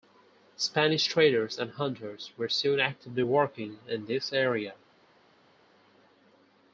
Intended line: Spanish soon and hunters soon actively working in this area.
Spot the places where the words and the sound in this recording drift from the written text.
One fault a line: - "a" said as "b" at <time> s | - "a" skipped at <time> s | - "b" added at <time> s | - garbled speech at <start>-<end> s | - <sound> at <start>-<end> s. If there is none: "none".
- "soon" said as "traders" at 1.1 s
- "were" added at 2.4 s